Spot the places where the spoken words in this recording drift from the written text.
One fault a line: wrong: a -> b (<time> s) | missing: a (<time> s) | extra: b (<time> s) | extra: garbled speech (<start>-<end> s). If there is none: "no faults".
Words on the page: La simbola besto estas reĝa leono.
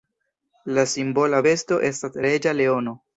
no faults